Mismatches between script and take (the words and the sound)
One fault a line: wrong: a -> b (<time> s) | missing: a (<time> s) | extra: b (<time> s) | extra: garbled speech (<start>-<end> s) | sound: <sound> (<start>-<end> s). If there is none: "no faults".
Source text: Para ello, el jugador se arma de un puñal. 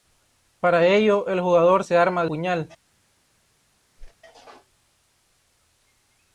missing: un (2.3 s)
sound: whoosh (4.0-4.2 s)